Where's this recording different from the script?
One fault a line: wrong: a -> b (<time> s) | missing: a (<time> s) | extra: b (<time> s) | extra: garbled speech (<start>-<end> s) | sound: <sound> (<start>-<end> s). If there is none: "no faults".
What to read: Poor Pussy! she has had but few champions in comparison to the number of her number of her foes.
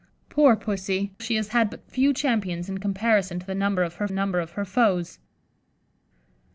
no faults